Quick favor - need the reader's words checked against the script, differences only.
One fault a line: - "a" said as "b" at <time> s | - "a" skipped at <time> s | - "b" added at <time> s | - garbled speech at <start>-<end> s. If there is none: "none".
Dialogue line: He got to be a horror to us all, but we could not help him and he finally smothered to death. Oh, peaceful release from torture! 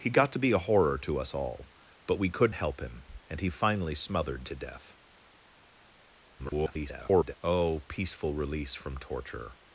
- "not" skipped at 2.5 s
- garbled speech at 6.4-7.4 s